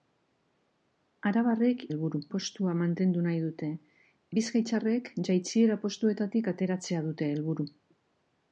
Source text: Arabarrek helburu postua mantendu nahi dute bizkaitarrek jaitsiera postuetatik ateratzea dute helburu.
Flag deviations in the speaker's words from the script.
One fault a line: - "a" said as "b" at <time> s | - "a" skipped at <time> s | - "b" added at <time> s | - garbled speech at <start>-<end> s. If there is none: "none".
none